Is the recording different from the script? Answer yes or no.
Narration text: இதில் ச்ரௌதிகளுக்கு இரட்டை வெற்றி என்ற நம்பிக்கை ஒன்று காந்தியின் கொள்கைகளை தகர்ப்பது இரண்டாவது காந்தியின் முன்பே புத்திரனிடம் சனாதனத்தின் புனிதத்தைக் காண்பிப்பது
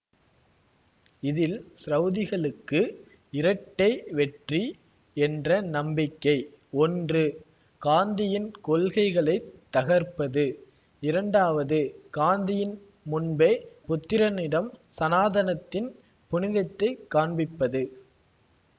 no